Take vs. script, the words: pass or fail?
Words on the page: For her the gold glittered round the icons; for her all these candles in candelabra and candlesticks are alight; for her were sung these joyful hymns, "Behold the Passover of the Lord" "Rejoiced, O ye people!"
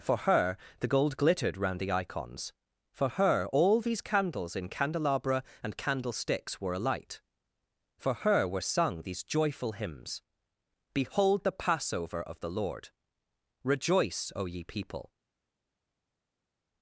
fail